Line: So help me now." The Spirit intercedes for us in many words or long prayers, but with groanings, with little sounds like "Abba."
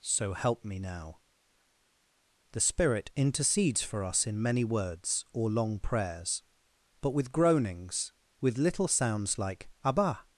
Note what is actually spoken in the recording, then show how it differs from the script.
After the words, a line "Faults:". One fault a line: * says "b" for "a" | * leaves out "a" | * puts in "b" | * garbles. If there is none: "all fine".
So help me now." The Spirit intercedes for us in many words or long prayers, but with groanings, with little sounds like "Abba."
Faults:
all fine